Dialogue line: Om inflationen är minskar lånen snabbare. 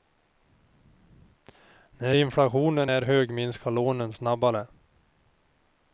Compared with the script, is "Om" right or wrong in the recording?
wrong